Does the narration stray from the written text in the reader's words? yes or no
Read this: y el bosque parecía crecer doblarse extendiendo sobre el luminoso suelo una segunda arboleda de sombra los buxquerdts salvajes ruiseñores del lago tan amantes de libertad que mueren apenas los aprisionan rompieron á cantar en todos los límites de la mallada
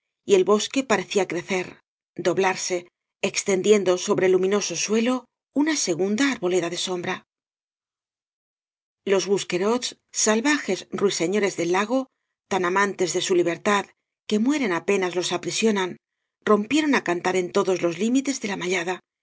yes